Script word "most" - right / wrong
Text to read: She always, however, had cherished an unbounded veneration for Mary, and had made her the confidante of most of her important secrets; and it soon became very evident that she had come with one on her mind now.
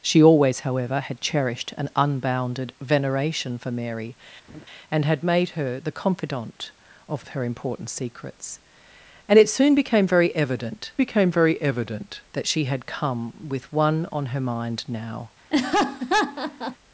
wrong